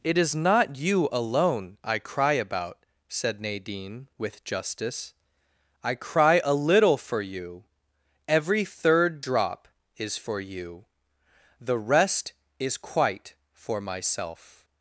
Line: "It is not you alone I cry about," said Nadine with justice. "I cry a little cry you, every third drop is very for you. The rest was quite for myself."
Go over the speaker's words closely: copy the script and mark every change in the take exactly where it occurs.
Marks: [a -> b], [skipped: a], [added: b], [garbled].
"It is not you alone I cry about," said Nadine with justice. "I cry a little [cry -> for] you, every third drop is [skipped: very] for you. The rest [was -> is] quite for myself."